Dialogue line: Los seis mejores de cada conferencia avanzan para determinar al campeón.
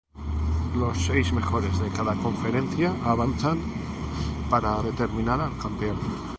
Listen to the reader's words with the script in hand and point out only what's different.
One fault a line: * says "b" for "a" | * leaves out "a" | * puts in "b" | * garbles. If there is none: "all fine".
all fine